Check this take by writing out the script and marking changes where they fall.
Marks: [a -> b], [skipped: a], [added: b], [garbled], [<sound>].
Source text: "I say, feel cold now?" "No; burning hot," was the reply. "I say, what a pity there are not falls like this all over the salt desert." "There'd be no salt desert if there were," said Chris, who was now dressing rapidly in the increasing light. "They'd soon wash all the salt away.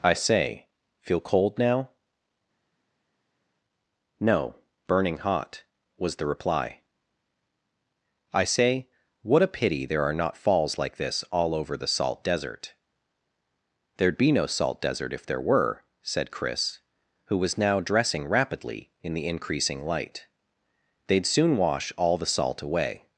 "I say, feel cold now?" "No; burning hot," was the reply. "I say, what a pity there are not falls like this all over the salt desert." "There'd be no salt desert if there were," said Chris, who was now dressing rapidly in the increasing light. "They'd soon wash all the salt away.